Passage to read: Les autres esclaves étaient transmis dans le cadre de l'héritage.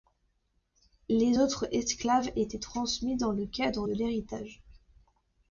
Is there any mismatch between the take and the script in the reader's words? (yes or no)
no